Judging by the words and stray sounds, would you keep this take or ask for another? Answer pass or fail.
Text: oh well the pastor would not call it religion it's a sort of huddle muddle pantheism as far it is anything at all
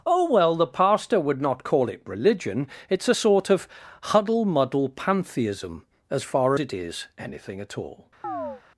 fail